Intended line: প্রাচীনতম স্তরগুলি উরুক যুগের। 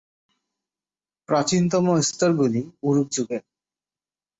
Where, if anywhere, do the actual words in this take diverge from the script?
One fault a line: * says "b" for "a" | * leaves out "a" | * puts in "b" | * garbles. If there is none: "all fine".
all fine